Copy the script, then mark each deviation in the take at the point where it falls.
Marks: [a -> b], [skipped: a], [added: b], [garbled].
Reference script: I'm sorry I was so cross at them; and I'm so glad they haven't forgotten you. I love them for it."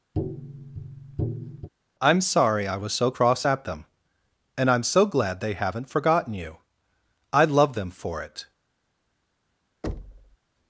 I'm sorry I was so cross at them; and I'm so glad they haven't forgotten you. I love them for it."